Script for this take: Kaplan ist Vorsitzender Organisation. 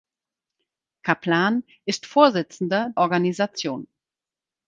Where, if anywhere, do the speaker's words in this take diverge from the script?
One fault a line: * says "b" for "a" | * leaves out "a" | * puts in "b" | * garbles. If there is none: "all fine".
all fine